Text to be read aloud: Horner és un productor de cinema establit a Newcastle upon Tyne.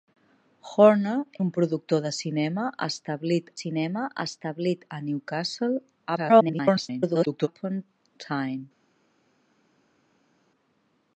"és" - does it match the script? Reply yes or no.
no